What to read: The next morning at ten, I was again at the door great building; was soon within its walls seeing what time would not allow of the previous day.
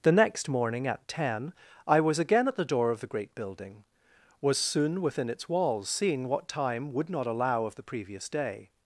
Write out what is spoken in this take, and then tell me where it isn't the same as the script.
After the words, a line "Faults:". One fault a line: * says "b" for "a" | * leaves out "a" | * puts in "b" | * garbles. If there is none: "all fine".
The next morning at ten, I was again at the door of the great building; was soon within its walls seeing what time would not allow of the previous day.
Faults:
* puts in "of the"